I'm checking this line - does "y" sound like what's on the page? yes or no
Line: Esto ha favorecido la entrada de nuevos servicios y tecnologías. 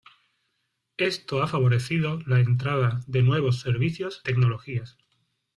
no